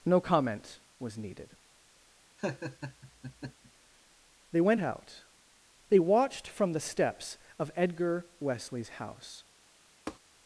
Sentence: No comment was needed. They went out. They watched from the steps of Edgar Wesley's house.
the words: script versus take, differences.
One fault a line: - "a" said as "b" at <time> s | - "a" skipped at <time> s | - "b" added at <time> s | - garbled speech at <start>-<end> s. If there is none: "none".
none